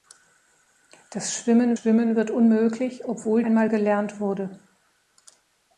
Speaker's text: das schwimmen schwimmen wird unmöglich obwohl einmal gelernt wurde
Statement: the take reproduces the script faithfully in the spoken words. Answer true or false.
true